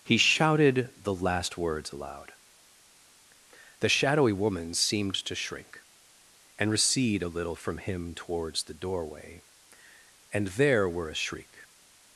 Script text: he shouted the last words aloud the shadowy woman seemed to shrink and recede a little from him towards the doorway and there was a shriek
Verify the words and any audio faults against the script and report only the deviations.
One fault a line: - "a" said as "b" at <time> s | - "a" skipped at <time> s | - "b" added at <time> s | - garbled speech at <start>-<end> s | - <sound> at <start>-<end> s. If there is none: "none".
- "was" said as "were" at 10.9 s